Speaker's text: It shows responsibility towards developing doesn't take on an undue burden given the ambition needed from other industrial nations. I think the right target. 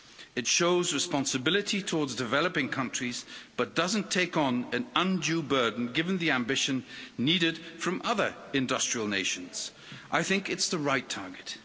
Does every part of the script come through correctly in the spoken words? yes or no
no